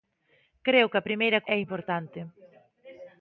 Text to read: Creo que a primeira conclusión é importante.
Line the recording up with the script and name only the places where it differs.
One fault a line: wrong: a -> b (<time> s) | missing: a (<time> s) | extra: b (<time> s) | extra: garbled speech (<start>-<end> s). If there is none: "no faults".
missing: conclusión (1.4 s)